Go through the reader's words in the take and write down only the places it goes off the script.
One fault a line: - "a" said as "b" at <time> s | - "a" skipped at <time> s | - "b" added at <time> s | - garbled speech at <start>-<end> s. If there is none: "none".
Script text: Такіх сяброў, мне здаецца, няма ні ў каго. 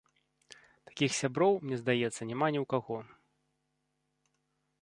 none